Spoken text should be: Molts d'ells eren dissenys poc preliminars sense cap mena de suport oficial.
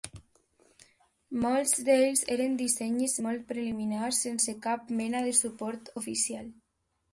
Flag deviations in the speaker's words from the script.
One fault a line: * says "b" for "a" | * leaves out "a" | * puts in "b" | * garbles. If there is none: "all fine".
* says "molt" for "poc"